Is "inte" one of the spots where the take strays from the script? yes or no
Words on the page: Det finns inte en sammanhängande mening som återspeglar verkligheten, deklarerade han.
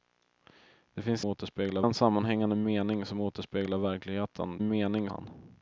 yes